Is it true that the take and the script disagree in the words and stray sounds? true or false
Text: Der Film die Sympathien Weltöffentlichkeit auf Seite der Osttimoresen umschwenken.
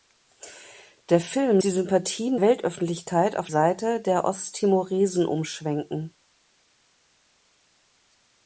false